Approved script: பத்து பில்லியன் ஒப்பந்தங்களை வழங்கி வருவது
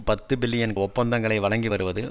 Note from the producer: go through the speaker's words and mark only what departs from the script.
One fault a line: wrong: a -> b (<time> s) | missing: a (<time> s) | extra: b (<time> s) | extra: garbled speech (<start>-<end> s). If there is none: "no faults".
no faults